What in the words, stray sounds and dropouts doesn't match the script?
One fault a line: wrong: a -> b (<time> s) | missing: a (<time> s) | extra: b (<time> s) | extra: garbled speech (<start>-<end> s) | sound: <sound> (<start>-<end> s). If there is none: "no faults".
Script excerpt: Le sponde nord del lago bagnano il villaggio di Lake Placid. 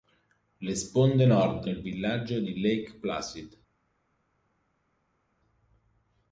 missing: del lago bagnano (1.7 s)